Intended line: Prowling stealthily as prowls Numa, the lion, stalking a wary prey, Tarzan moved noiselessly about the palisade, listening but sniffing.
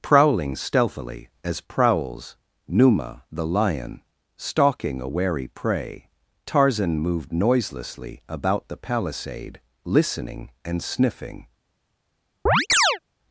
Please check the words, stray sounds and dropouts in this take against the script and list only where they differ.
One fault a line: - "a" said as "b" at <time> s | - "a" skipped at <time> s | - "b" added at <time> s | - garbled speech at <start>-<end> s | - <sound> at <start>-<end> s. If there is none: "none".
- "but" said as "and" at 10.6 s
- chirp at 12.5-13.0 s